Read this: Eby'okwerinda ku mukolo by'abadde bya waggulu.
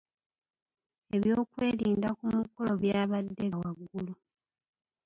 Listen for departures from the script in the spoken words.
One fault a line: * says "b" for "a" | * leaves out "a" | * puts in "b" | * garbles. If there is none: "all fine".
* leaves out "bya"